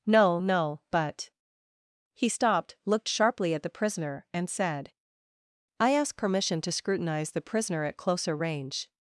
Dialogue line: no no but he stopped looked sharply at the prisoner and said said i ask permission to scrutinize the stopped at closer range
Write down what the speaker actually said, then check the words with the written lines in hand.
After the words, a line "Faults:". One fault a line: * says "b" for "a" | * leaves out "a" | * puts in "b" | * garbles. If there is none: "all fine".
no no but he stopped looked sharply at the prisoner and said i ask permission to scrutinize the prisoner at closer range
Faults:
* leaves out "said"
* says "prisoner" for "stopped"